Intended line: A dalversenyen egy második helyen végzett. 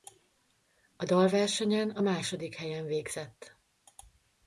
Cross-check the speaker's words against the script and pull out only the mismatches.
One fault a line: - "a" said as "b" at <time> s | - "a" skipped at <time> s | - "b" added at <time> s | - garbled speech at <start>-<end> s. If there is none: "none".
- "egy" said as "a" at 1.9 s